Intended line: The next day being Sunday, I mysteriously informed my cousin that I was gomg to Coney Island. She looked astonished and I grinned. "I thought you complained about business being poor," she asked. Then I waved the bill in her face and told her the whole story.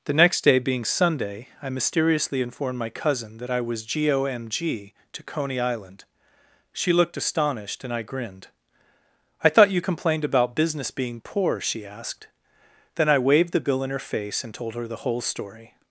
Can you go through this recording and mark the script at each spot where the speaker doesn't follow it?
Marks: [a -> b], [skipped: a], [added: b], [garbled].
The next day being Sunday, I mysteriously informed my cousin that I was gomg to Coney Island. She looked astonished and I grinned. "I thought you complained about business being poor," she asked. Then I waved the bill in her face and told her the whole story.